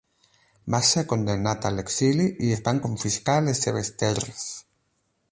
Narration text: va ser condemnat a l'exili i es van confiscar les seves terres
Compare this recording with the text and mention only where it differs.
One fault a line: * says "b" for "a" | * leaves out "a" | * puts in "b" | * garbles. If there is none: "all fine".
all fine